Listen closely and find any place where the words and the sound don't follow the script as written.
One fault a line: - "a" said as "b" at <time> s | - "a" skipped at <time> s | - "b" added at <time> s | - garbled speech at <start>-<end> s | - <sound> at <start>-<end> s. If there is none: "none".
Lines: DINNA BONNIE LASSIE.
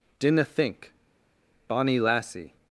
- "THINK" added at 0.5 s